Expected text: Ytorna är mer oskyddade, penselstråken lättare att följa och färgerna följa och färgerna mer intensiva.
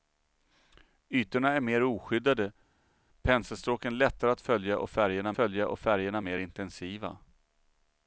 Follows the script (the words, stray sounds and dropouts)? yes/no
yes